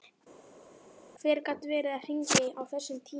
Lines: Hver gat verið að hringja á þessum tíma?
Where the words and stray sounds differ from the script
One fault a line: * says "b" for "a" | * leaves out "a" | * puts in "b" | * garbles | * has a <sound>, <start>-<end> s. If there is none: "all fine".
all fine